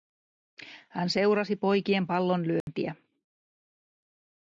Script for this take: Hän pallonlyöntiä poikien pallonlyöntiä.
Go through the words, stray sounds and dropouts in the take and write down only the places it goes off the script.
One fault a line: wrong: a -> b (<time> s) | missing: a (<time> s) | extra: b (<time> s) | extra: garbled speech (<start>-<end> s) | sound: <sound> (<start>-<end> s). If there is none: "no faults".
wrong: pallonlyöntiä -> seurasi (1.1 s)
sound: dropout (2.6-2.7 s)